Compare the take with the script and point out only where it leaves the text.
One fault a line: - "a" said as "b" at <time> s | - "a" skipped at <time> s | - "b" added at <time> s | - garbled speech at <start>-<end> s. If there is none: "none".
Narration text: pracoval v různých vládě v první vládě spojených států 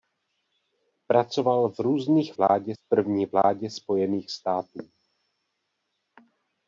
none